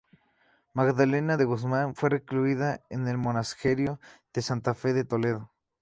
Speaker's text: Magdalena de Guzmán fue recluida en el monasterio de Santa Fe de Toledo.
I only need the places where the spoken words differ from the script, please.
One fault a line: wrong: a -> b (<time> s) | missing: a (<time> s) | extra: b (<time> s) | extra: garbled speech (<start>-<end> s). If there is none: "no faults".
no faults